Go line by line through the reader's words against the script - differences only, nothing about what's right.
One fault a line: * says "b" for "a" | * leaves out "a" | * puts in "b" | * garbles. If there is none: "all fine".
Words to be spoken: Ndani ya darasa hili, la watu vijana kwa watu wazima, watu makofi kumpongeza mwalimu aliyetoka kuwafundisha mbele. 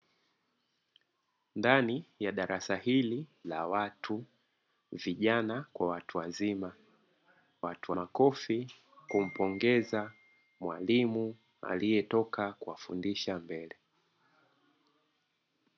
all fine